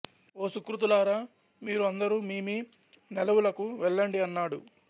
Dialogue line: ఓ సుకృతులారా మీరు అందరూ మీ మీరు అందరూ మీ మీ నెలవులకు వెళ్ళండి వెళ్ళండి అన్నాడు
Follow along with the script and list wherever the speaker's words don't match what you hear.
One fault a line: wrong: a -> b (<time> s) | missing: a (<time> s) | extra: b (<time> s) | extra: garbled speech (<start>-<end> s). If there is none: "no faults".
missing: మీరు అందరూ (2.4 s)
missing: మీ (2.6 s)
missing: వెళ్ళండి (4.2 s)